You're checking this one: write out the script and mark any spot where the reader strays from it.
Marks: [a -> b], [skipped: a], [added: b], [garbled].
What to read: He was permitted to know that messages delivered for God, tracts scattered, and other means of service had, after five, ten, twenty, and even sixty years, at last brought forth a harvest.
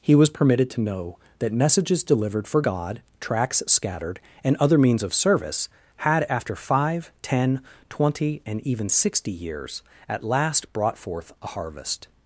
He was permitted to know that messages delivered for God, tracts scattered, and other means of service had, after five, ten, twenty, and even sixty years, at last brought forth a harvest.